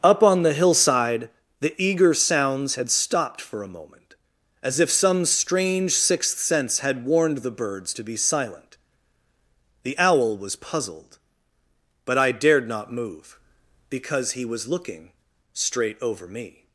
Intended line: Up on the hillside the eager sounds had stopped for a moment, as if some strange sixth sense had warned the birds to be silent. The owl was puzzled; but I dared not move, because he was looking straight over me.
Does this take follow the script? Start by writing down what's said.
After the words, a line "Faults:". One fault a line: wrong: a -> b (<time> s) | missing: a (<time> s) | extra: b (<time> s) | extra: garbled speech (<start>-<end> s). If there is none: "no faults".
Up on the hillside the eager sounds had stopped for a moment, as if some strange sixth sense had warned the birds to be silent. The owl was puzzled; but I dared not move, because he was looking straight over me.
Faults:
no faults